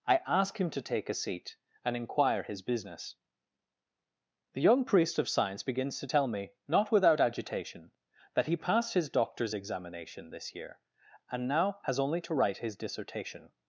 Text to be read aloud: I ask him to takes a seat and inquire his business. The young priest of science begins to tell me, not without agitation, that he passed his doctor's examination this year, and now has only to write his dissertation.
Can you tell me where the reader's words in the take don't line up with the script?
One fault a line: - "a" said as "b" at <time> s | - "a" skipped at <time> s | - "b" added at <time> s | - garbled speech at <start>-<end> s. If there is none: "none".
- "takes" said as "take" at 0.8 s